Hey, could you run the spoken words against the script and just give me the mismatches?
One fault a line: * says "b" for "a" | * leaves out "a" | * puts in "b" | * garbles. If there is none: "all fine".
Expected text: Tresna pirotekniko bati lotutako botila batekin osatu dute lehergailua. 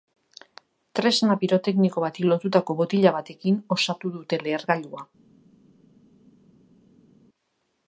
all fine